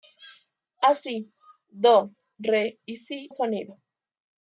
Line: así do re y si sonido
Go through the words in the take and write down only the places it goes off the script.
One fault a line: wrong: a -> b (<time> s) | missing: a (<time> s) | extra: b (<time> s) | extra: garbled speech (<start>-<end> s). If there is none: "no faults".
no faults